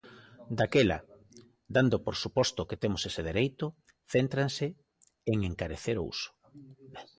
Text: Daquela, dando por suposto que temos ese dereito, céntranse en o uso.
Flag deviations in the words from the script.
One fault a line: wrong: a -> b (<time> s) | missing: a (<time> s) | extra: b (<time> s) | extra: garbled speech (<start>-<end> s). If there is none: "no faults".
extra: encarecer (5.4 s)